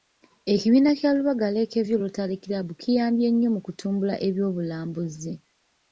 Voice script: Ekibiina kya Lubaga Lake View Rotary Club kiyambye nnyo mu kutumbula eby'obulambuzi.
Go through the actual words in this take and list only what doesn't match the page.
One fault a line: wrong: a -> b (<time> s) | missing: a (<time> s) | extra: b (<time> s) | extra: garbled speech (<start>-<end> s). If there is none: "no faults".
no faults